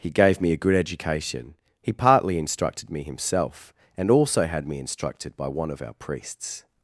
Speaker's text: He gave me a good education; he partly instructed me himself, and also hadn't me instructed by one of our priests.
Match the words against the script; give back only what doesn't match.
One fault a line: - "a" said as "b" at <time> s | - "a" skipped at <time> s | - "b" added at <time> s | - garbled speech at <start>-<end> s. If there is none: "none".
- "hadn't" said as "had" at 4.5 s